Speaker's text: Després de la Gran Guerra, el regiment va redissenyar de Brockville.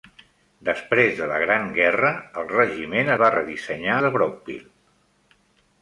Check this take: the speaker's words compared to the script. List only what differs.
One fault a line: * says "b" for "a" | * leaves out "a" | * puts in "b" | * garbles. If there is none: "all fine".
all fine